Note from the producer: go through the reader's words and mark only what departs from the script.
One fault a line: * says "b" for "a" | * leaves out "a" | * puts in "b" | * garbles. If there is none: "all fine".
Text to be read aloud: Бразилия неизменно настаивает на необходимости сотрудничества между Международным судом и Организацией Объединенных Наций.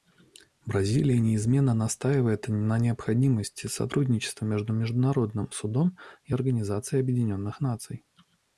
all fine